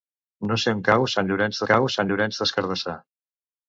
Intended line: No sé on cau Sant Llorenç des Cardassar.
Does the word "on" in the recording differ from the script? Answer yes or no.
no